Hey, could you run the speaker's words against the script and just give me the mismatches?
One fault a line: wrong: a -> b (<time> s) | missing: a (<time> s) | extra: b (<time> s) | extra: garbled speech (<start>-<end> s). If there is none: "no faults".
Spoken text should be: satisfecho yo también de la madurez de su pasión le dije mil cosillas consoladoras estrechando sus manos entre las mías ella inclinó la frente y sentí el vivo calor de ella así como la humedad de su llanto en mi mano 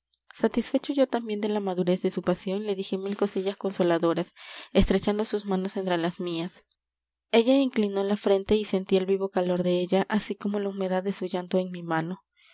no faults